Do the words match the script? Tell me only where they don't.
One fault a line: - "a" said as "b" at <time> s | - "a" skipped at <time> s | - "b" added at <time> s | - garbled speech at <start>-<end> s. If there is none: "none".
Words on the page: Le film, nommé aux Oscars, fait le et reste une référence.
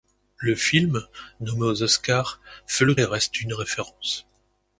none